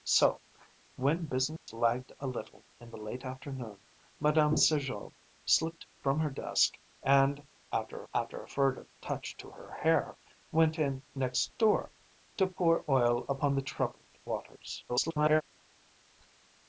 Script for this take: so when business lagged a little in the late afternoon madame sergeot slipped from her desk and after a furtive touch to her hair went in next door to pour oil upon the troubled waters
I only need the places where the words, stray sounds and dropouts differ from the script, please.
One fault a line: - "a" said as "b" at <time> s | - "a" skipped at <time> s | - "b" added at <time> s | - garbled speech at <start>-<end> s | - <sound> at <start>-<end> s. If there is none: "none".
- dropout at 1.6-1.7 s
- "after" added at 8.1 s
- garbled speech at 14.9-15.4 s